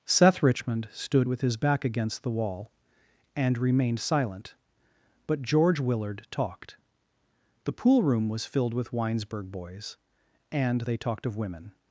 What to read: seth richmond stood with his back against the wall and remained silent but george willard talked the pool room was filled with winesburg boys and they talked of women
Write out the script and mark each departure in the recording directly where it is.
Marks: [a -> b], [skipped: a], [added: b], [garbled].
seth richmond stood with his back against the wall and remained silent but george willard talked the pool room was filled with winesburg boys and they talked of women